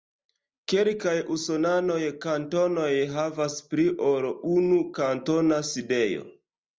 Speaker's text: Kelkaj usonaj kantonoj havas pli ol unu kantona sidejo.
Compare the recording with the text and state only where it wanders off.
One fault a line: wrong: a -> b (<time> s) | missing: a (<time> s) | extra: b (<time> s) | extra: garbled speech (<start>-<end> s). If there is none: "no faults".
no faults